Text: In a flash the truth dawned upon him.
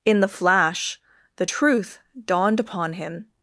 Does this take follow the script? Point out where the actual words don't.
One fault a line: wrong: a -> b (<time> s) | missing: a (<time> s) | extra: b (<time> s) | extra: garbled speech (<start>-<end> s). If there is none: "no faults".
wrong: a -> the (0.2 s)